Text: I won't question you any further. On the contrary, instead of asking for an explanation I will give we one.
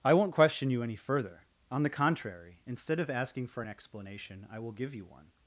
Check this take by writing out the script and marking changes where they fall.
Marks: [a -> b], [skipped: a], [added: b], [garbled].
I won't question you any further. On the contrary, instead of asking for an explanation I will give [we -> you] one.